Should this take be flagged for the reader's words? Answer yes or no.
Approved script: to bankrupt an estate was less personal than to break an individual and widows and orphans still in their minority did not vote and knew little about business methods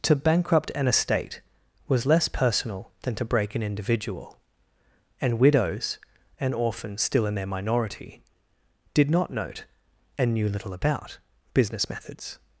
yes